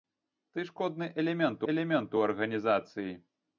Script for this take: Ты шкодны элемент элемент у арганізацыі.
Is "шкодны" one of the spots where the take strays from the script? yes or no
no